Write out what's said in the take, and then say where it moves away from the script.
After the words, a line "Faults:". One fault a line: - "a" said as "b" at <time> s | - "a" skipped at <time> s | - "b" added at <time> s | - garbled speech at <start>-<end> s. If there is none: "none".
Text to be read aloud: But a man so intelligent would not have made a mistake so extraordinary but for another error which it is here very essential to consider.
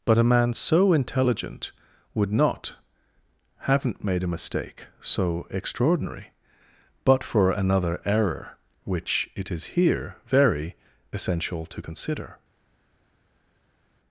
But a man so intelligent would not haven't made a mistake so extraordinary but for another error which it is here very essential to consider.
Faults:
- "have" said as "haven't" at 3.6 s